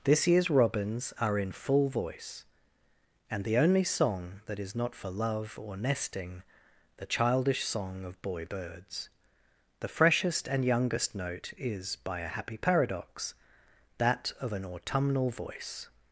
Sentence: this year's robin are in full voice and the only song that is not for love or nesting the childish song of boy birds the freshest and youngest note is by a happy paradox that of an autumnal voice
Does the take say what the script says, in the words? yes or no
no